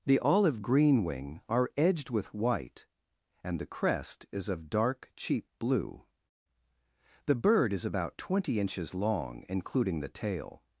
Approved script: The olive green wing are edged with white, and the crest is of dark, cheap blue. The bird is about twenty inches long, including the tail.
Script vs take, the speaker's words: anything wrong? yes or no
no